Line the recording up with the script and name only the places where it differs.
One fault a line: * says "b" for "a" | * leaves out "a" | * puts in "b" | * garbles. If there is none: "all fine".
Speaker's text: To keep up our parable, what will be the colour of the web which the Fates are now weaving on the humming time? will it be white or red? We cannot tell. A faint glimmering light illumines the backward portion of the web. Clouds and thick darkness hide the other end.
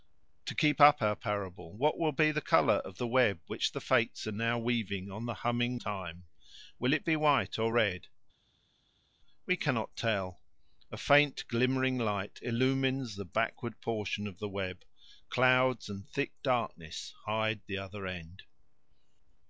all fine